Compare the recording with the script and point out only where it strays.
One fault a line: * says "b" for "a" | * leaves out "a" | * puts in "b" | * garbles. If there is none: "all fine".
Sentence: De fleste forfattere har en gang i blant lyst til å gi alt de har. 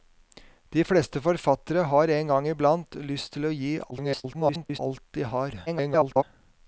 * garbles
* garbles